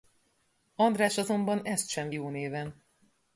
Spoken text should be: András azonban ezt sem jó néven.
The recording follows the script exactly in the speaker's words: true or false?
true